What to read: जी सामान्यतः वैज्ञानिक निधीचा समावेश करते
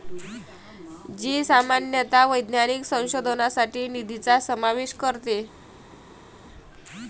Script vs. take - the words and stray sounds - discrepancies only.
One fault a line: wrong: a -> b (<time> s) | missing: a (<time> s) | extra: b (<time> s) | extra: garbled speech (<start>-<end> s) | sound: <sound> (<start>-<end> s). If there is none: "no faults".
extra: संशोधनासाठी (2.8 s)